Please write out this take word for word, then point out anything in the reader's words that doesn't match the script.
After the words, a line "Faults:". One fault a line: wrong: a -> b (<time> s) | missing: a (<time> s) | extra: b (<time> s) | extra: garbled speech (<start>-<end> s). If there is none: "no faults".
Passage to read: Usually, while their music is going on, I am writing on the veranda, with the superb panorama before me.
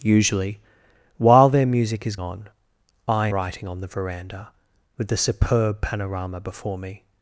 Usually, while their music is on, I writing on the veranda, with the superb panorama before me.
Faults:
missing: going (2.1 s)
missing: am (3.3 s)